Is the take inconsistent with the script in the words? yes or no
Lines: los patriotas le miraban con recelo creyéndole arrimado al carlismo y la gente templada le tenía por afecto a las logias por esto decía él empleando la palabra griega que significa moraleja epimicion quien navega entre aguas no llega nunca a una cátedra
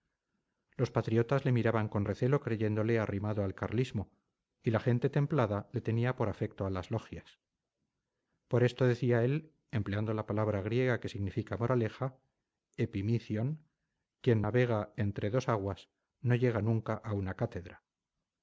yes